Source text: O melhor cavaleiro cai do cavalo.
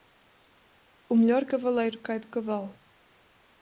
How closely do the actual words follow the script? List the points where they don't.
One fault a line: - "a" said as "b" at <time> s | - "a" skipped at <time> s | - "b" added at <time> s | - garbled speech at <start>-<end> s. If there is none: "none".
none